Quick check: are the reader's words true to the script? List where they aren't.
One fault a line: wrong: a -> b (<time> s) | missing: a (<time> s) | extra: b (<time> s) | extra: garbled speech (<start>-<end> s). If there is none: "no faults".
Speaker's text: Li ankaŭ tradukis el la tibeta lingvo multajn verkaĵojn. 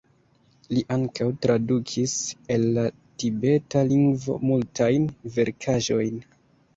no faults